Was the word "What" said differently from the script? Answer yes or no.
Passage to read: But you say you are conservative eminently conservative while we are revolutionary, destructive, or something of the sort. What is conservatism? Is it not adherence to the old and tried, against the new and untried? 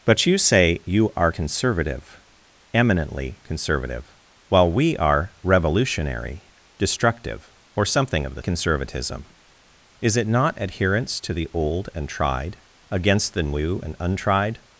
yes